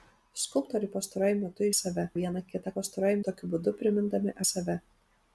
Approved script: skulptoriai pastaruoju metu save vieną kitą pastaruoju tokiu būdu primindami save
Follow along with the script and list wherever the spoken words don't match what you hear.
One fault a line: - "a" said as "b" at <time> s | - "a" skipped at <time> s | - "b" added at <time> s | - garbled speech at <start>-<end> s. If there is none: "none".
none